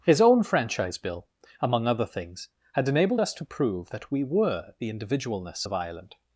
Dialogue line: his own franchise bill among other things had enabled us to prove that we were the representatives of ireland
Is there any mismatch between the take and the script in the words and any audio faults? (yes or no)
yes